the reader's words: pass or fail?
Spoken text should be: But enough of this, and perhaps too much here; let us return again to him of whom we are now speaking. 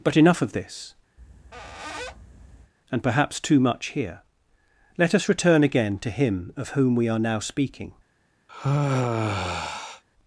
pass